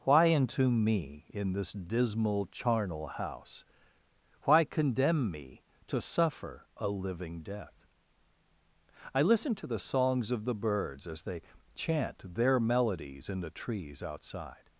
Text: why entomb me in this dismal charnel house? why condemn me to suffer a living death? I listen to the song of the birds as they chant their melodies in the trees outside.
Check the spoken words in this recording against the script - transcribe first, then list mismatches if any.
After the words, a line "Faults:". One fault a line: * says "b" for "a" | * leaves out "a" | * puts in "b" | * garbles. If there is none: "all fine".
why entomb me in this dismal charnel house? why condemn me to suffer a living death? I listen to the songs of the birds as they chant their melodies in the trees outside.
Faults:
* says "songs" for "song"